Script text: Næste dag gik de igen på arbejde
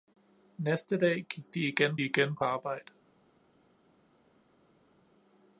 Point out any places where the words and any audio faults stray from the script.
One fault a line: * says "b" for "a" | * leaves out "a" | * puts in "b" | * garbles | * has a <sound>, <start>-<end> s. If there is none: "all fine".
* puts in "igen"